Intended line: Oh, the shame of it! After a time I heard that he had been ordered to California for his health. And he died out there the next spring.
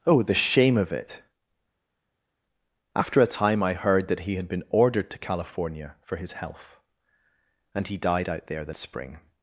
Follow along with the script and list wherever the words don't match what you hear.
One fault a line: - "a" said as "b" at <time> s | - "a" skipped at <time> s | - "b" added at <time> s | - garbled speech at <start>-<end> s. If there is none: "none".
- "next" skipped at 8.7 s